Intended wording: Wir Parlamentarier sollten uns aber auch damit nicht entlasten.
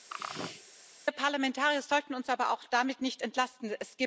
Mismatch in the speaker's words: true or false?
false